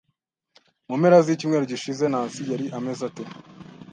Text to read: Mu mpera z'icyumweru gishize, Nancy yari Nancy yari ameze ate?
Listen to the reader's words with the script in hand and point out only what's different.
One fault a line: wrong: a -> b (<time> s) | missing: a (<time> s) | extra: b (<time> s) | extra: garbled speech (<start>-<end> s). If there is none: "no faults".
missing: Nancy yari (2.7 s)